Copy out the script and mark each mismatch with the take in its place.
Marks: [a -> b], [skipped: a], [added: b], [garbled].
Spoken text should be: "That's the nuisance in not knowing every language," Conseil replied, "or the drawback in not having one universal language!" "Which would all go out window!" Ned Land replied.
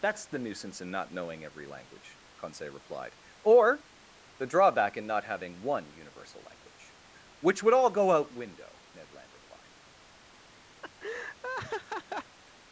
"That's the nuisance in not knowing every language," Conseil replied, "or the drawback in not having one universal language!" "Which would all go out window!" Ned Land replied.